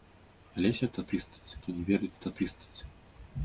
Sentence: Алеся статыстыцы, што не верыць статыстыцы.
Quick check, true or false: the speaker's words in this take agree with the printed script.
true